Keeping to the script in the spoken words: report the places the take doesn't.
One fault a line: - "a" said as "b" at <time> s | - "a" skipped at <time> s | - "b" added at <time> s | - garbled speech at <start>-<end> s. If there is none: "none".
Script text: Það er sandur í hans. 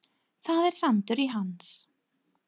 none